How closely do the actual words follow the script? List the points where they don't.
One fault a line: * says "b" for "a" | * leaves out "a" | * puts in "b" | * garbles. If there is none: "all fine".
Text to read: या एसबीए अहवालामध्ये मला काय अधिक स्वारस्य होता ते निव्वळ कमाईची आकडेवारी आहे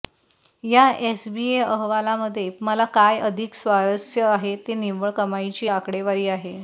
* says "आहे" for "होता"